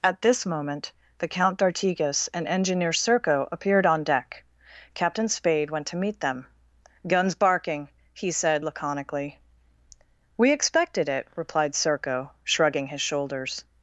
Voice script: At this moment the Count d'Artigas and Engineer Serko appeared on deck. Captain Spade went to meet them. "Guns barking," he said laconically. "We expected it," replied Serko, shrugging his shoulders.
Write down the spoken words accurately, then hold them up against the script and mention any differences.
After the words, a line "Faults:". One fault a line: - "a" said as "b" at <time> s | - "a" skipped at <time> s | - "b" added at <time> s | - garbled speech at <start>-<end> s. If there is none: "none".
At this moment the Count d'Artigas and Engineer Serko appeared on deck. Captain Spade went to meet them. "Guns barking," he said laconically. "We expected it," replied Serko, shrugging his shoulders.
Faults:
none